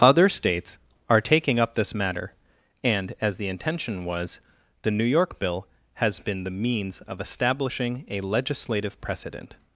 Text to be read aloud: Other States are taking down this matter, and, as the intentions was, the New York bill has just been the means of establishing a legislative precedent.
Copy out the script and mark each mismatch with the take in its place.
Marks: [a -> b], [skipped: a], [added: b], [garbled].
Other States are taking [down -> up] this matter, and, as the [intentions -> intention] was, the New York bill has [skipped: just] been the means of establishing a legislative precedent.